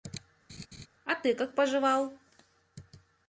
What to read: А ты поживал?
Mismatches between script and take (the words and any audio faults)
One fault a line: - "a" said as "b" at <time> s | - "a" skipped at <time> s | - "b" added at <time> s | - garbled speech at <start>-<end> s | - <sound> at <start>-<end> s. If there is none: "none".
- laugh at 0.5-0.9 s
- "как" added at 1.3 s